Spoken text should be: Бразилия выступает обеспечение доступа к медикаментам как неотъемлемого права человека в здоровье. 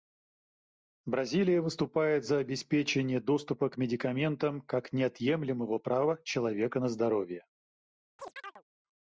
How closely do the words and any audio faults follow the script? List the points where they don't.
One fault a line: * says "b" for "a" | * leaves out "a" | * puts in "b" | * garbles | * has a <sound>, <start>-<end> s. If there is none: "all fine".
* puts in "за"
* says "на" for "в"
* has a chirp, 8.2-8.6 s